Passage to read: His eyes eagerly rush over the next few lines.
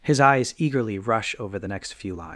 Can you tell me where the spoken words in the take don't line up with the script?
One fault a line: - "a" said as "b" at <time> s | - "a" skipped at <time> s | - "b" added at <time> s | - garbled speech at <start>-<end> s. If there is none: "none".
none